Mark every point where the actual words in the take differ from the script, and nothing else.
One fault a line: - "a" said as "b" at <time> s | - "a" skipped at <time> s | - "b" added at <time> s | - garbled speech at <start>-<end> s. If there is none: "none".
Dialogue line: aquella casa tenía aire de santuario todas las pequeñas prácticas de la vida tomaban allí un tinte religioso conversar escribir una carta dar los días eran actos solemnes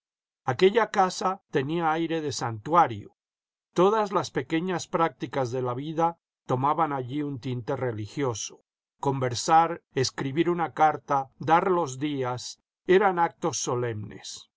none